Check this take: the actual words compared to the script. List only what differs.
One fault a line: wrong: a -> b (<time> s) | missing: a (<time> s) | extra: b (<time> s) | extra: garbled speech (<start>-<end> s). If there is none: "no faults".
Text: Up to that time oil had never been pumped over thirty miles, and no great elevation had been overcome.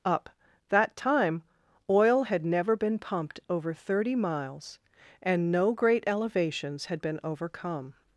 missing: to (0.3 s)
wrong: elevation -> elevations (6.1 s)